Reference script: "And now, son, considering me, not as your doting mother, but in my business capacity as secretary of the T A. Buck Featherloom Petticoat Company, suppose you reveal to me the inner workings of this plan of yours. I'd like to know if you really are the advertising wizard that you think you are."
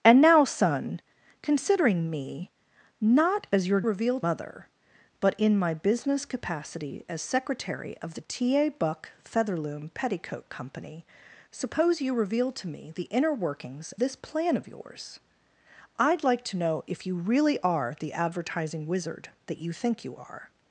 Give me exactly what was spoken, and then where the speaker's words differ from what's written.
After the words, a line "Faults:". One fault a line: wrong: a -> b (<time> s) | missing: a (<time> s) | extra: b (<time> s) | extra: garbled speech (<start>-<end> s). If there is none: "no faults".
"And now, son, considering me, not as your reveal mother, but in my business capacity as secretary of the T A. Buck Featherloom Petticoat Company, suppose you reveal to me the inner workings this plan of yours. I'd like to know if you really are the advertising wizard that you think you are."
Faults:
wrong: doting -> reveal (3.8 s)
missing: of (13.9 s)